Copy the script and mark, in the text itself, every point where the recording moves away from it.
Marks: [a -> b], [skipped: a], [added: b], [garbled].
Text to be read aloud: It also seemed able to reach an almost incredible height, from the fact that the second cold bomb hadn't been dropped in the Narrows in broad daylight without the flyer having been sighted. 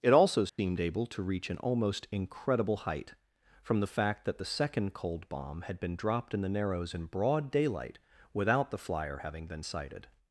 It also seemed able to reach an almost incredible height, from the fact that the second cold bomb [hadn't -> had] been dropped in the Narrows in broad daylight without the flyer having been sighted.